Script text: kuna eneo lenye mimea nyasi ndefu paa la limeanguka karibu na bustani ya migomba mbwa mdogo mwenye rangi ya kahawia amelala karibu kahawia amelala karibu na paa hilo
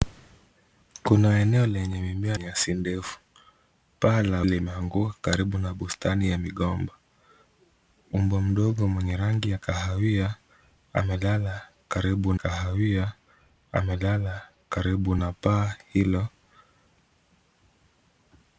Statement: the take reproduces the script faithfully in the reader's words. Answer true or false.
true